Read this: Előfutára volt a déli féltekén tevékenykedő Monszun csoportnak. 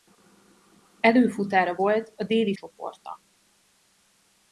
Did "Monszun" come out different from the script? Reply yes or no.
yes